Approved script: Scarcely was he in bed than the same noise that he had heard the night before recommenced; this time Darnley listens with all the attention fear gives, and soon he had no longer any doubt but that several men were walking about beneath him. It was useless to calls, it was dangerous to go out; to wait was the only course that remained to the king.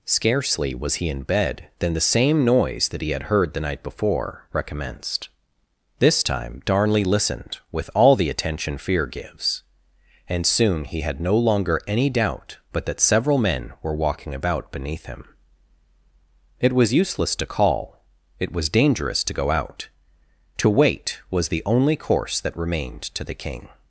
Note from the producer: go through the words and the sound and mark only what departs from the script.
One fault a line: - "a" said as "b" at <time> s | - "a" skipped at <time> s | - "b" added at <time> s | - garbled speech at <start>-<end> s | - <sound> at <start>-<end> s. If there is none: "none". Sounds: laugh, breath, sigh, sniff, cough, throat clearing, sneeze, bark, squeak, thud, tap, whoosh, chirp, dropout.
- "listens" said as "listened" at 7.0 s
- "calls" said as "call" at 17.4 s